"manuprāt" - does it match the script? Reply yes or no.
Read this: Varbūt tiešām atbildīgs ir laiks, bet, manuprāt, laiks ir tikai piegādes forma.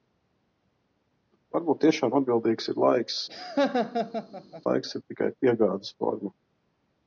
no